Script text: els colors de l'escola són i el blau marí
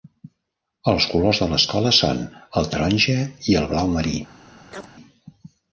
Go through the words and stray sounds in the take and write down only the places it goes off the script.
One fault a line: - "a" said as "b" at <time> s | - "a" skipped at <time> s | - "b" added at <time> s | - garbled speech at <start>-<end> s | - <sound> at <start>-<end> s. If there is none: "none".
- "el taronja" added at 2.6 s
- chirp at 4.7-4.9 s